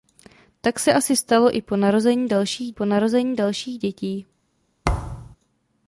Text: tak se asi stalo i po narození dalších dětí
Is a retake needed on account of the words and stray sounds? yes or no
yes